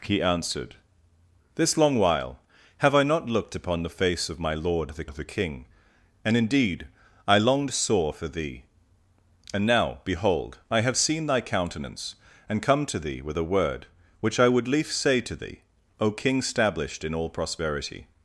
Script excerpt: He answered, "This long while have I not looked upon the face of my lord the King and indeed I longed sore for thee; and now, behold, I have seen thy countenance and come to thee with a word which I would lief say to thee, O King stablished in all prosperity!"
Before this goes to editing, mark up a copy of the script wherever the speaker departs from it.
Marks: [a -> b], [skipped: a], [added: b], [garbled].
He answered, "This long while have I not looked upon the face of my lord the [added: the] King and indeed I longed sore for thee; and now, behold, I have seen thy countenance and come to thee with a word which I would lief say to thee, O King stablished in all prosperity!"